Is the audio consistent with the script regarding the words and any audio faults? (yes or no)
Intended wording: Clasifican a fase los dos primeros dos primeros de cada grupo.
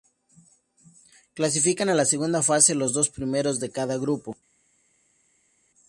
no